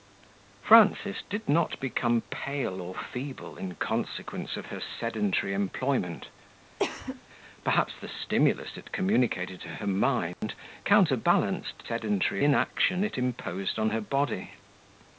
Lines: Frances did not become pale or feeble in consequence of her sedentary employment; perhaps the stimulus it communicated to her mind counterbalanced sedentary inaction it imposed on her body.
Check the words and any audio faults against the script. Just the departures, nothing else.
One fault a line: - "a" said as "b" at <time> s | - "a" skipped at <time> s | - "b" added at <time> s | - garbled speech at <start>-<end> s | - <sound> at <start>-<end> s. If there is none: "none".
- cough at 6.8-7.2 s
- dropout at 10.3-10.4 s